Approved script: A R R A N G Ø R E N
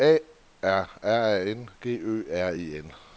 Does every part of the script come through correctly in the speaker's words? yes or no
yes